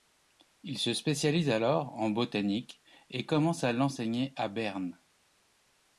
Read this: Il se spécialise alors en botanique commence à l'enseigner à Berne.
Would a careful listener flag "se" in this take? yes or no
no